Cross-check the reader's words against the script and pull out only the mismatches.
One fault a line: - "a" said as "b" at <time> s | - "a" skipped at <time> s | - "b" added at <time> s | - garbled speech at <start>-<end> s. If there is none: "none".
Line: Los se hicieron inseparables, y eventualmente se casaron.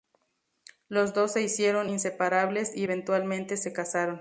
- "dos" added at 1.1 s